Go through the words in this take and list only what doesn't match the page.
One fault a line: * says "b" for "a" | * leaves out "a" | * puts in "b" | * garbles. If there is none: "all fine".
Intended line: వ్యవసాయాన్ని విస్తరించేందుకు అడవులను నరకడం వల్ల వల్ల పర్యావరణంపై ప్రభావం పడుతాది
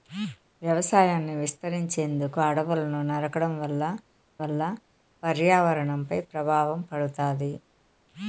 all fine